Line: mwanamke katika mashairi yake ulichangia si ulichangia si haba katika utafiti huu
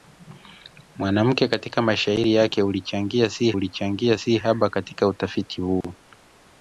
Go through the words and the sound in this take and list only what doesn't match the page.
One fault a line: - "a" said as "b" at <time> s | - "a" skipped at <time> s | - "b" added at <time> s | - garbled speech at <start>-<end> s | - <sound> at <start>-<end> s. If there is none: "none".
- dropout at 5.8-5.8 s